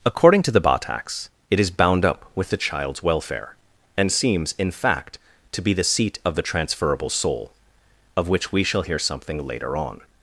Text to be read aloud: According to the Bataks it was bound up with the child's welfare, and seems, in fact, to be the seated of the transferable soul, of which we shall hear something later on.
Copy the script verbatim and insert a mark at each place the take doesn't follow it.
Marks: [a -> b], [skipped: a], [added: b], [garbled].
According to the Bataks it [was -> is] bound up with the child's welfare, and seems, in fact, to be the [seated -> seat] of the transferable soul, of which we shall hear something later on.